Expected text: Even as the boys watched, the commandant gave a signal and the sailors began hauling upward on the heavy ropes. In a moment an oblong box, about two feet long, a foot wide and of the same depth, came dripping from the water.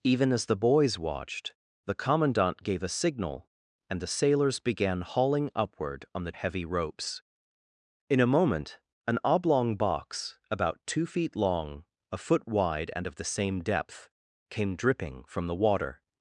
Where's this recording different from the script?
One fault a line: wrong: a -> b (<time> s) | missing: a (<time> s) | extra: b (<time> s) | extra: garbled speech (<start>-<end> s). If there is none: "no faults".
no faults